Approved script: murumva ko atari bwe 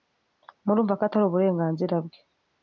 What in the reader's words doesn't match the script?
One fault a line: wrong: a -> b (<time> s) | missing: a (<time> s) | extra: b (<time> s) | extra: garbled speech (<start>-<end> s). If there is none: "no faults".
extra: uburenganzira (1.2 s)